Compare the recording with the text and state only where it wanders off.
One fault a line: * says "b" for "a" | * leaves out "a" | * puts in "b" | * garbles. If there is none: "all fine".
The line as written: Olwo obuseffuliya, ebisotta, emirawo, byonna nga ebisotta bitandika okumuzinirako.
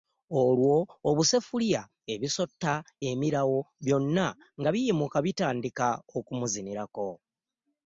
* says "biyimuka" for "ebisotta"